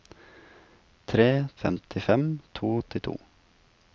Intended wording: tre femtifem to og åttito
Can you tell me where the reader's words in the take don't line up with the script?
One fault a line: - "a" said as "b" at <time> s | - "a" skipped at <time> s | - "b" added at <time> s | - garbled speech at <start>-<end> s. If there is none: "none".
none